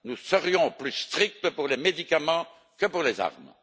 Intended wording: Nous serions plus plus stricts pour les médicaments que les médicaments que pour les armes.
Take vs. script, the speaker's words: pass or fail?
fail